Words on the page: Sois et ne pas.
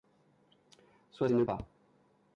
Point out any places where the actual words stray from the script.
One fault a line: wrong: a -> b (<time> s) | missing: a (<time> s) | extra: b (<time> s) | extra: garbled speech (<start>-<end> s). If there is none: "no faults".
no faults